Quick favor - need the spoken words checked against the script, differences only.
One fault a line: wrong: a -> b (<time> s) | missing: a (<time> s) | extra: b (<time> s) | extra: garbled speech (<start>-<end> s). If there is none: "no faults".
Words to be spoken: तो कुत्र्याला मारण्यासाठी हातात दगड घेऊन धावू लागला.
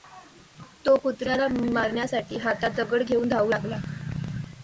no faults